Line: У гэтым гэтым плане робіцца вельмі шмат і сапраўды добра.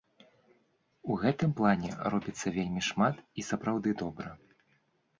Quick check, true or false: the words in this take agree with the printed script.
false